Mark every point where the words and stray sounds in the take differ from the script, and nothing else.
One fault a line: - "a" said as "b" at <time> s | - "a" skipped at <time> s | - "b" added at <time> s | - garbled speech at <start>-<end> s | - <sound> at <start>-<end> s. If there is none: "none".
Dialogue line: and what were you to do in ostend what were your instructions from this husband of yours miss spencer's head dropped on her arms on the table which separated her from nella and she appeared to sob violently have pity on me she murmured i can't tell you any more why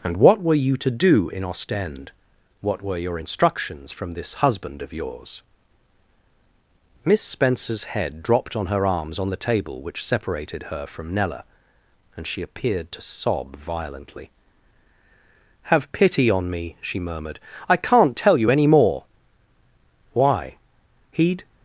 - "he'd" added at 21.1 s